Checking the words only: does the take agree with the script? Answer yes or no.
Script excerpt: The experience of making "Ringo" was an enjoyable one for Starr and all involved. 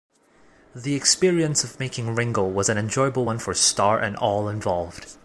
yes